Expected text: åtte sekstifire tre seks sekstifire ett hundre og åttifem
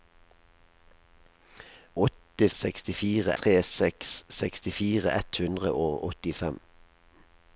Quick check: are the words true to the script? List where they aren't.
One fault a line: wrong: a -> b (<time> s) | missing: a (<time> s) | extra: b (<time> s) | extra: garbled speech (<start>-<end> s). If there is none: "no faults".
no faults